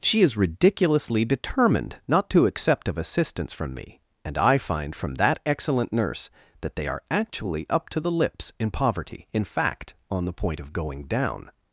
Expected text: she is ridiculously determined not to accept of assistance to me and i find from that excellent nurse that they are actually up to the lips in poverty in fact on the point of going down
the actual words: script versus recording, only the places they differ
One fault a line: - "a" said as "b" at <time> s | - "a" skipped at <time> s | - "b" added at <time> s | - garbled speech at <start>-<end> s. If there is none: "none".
- "to" said as "from" at 3.5 s